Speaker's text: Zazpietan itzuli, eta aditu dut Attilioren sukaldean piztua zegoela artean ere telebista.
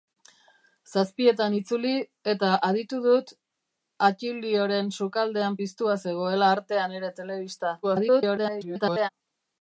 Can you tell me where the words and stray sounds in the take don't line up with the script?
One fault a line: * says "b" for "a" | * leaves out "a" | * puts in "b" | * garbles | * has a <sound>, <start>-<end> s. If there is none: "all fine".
* garbles